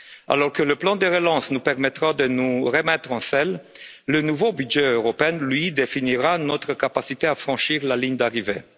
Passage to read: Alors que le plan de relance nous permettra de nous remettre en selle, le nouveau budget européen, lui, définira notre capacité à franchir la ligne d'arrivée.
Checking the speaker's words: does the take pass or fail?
pass